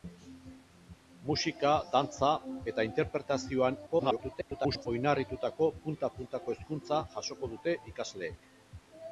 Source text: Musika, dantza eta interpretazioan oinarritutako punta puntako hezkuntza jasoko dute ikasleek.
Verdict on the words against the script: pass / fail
fail